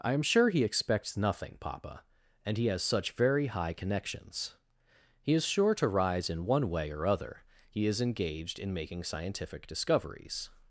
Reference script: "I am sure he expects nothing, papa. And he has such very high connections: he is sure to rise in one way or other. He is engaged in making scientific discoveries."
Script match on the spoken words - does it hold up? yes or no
yes